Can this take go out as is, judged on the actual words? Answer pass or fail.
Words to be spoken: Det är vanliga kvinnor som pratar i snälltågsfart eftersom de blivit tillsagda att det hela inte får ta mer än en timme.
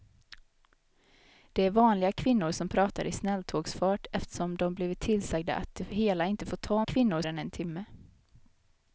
fail